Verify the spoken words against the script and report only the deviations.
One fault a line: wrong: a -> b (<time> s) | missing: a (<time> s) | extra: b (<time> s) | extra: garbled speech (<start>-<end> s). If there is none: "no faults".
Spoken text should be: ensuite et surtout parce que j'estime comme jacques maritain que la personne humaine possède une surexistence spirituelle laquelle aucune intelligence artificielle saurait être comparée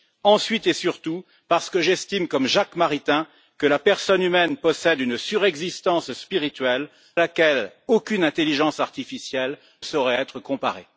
no faults